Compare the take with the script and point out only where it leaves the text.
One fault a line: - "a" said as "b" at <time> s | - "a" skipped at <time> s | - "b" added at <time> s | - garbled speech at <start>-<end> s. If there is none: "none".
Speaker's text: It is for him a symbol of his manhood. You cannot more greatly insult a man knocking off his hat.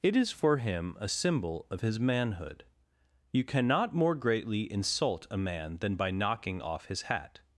- "than by" added at 5.8 s